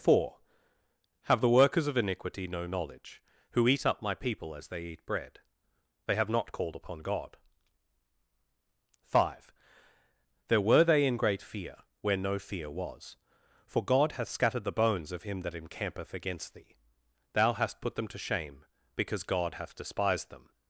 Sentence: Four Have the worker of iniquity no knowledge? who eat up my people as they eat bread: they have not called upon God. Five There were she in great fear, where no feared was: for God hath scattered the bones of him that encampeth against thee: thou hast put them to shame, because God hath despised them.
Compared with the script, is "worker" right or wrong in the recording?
wrong